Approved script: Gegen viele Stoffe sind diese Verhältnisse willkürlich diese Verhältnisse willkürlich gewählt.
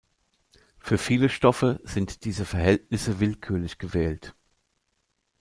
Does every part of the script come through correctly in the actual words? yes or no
no